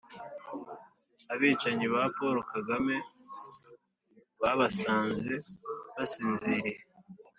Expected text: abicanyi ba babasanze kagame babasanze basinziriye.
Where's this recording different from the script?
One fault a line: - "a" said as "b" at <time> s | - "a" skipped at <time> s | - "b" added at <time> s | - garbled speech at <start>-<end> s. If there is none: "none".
- "babasanze" said as "paul" at 2.1 s